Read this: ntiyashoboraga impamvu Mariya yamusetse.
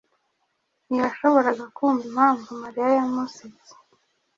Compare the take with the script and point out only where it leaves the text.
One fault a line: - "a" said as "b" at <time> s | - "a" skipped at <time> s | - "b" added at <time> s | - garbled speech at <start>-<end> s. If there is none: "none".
- "kumva" added at 1.8 s